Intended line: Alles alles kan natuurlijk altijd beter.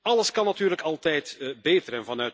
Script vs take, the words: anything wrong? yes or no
yes